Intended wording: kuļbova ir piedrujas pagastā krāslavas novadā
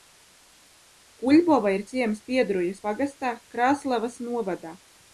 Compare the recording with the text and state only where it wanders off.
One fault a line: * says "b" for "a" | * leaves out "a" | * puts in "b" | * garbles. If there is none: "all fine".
* puts in "ciems"